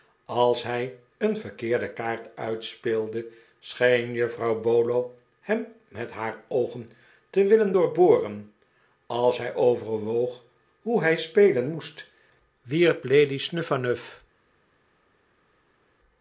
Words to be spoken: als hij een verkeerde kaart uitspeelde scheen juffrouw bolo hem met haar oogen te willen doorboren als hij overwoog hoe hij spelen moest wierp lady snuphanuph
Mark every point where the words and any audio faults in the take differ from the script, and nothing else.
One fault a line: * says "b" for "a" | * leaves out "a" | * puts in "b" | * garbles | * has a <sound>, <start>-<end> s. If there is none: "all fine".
all fine